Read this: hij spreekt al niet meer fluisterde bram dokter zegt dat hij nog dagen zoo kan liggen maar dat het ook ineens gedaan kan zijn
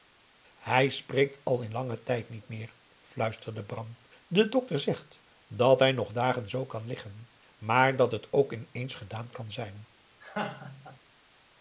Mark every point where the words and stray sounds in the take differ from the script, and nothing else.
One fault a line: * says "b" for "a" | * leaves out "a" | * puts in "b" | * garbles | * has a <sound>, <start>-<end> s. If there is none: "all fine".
* puts in "in langen tijd"
* puts in "de"
* has a laugh, 10.2-11.0 s